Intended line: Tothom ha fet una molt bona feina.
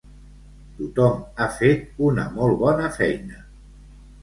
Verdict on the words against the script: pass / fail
pass